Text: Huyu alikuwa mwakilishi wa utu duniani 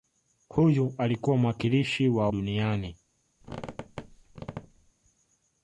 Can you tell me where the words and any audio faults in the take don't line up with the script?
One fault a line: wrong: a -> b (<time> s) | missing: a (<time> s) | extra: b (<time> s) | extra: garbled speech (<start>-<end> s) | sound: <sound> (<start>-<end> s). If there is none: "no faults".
missing: utu (2.3 s)
sound: squeak (3.4-4.9 s)